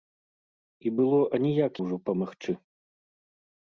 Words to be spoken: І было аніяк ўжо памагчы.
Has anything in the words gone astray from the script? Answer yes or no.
no